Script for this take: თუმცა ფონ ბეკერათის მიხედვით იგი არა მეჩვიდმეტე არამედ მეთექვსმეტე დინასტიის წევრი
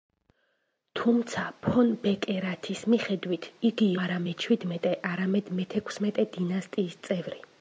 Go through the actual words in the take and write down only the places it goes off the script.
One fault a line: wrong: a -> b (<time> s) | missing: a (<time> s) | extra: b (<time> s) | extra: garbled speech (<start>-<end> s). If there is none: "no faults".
no faults